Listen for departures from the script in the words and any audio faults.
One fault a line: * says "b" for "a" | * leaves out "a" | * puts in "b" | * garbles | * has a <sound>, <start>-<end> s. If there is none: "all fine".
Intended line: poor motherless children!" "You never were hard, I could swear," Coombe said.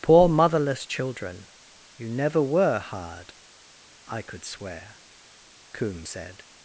all fine